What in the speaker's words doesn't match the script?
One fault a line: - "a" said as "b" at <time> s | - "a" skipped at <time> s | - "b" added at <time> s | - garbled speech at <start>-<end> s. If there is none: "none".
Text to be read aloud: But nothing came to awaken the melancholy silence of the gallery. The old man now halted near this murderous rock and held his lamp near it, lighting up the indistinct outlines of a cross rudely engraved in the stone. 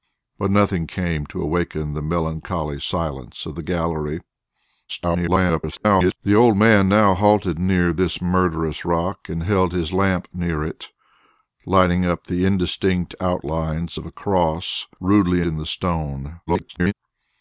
- garbled speech at 4.9-6.2 s
- "engraved" skipped at 15.4 s
- garbled speech at 16.5-16.9 s